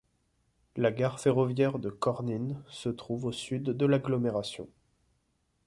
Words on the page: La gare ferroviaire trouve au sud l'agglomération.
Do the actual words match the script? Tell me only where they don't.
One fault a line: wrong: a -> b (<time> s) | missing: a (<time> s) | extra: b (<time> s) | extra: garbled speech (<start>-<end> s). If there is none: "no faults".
extra: de Kornyn se (1.8 s)
extra: de (3.6 s)